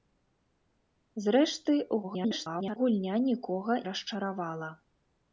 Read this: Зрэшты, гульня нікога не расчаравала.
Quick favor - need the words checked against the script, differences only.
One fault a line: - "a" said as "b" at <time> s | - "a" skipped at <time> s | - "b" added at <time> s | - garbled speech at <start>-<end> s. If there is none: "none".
- garbled speech at 2.0-2.8 s
- "не" skipped at 3.8 s